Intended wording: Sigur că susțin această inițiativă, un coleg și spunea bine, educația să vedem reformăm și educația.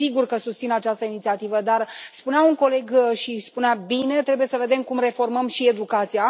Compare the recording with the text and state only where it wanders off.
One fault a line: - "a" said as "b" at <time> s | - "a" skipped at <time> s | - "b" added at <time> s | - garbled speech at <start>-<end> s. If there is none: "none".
- "dar spunea" added at 1.6 s
- "educația" said as "trebuie" at 4.2 s
- "cum" added at 4.8 s